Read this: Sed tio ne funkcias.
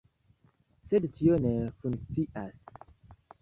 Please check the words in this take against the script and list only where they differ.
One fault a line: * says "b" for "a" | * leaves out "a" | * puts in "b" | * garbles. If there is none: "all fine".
all fine